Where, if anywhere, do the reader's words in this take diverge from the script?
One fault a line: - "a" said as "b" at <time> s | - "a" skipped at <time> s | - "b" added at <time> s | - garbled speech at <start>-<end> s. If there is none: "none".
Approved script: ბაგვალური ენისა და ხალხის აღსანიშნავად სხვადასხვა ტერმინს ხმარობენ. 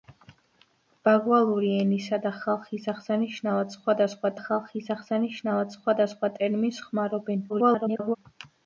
- "ხალხის აღსანიშნავად სხვადასხვა" added at 4.4 s
- garbled speech at 7.5-8.2 s